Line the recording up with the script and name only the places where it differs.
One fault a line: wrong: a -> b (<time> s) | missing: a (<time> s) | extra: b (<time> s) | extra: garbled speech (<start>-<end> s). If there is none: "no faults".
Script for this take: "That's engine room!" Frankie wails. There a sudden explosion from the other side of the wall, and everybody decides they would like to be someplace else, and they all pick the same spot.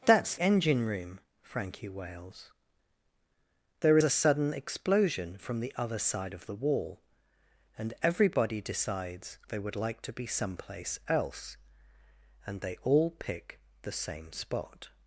no faults